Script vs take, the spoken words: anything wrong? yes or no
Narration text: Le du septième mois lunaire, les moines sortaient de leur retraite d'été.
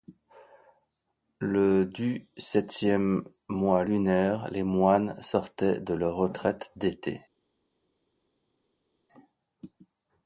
no